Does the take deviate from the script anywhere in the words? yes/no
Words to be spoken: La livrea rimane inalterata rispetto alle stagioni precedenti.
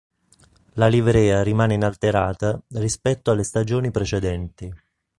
no